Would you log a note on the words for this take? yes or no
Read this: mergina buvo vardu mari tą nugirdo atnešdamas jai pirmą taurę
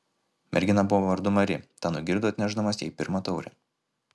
no